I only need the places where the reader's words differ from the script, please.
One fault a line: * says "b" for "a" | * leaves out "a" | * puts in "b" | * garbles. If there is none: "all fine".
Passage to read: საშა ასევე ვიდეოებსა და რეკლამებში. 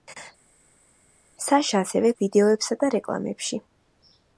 all fine